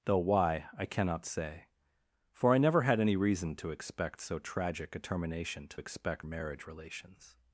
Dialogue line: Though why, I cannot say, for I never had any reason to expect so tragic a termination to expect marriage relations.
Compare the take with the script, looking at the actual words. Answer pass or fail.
pass